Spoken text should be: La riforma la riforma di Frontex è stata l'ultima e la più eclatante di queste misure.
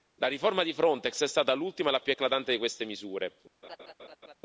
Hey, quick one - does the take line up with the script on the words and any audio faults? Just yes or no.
no